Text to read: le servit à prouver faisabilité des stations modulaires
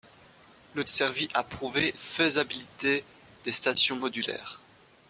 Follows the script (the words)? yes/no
yes